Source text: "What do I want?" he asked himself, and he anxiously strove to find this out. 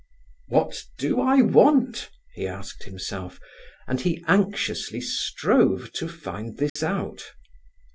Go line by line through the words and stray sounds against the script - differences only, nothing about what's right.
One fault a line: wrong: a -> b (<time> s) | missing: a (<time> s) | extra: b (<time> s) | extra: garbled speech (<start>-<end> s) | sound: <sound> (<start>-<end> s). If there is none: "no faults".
sound: dropout (6.7-6.8 s)